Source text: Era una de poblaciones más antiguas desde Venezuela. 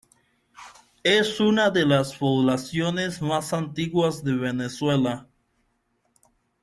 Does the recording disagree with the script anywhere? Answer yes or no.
yes